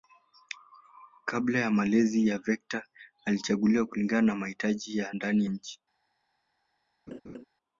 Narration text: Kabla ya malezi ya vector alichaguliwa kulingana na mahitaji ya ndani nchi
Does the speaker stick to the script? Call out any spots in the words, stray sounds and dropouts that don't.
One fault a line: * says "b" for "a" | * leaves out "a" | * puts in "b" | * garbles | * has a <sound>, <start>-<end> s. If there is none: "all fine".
* has a laugh, 7.1-7.4 s